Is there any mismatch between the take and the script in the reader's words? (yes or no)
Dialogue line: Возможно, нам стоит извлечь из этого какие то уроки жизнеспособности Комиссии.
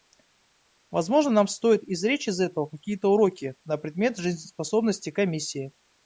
yes